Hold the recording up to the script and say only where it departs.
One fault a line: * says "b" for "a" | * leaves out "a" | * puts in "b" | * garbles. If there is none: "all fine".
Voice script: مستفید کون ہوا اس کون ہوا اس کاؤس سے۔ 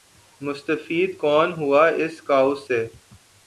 * leaves out "کون ہوا اس"